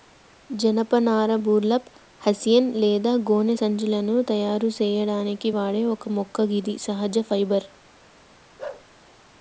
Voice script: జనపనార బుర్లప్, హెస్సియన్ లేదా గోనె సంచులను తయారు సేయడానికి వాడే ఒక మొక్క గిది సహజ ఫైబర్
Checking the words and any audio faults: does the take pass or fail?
fail